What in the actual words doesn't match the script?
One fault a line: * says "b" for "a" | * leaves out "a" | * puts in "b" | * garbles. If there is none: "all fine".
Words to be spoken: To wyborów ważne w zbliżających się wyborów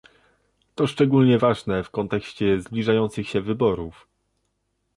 * says "szczególnie" for "wyborów"
* puts in "kontekście"